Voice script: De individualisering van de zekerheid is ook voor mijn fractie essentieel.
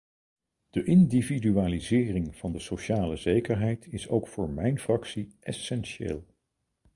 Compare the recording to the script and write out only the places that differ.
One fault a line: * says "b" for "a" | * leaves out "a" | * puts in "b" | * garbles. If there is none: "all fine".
* puts in "sociale"